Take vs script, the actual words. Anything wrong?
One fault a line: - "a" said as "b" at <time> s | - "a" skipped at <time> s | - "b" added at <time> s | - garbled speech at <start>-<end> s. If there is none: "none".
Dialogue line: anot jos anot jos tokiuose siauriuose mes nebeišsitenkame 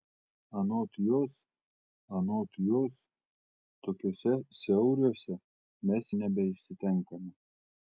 none